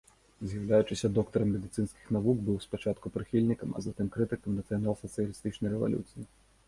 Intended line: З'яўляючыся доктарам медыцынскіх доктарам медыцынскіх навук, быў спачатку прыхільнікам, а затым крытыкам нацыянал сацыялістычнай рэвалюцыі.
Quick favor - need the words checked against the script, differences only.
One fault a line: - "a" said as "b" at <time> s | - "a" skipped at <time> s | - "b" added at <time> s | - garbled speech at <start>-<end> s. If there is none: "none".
- "доктарам медыцынскіх" skipped at 2.1 s